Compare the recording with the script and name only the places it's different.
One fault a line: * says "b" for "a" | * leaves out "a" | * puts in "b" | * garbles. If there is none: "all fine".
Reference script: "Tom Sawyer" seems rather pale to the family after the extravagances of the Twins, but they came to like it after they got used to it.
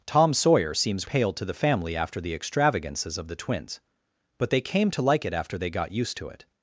* leaves out "rather"